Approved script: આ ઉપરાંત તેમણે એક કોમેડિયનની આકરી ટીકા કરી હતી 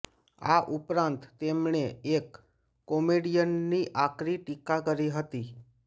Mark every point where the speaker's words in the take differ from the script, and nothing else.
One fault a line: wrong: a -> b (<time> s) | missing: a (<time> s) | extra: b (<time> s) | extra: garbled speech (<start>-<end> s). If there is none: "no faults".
no faults